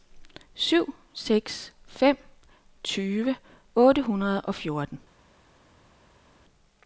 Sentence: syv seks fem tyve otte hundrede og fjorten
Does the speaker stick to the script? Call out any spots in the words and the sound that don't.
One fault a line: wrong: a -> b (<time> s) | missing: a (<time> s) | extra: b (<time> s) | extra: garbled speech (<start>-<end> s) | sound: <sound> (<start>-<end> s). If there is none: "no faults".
no faults